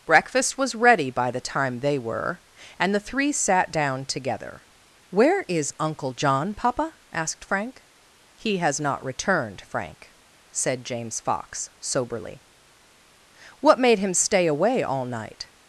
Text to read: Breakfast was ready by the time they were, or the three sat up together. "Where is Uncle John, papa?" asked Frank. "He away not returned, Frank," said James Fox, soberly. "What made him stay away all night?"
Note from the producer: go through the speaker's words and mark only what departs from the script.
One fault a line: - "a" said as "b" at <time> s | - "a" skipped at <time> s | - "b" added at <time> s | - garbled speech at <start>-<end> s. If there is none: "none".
- "or" said as "and" at 2.8 s
- "up" said as "down" at 3.7 s
- "away" said as "has" at 8.6 s